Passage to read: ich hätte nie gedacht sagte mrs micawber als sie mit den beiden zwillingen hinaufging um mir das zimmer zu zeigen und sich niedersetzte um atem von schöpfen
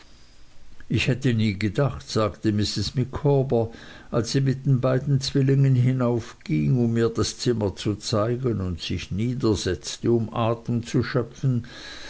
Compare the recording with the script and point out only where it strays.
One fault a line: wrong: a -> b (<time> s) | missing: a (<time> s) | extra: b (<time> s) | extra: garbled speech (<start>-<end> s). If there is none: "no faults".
wrong: von -> zu (10.8 s)